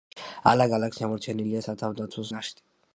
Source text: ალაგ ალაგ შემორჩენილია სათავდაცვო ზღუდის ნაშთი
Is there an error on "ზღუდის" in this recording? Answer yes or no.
yes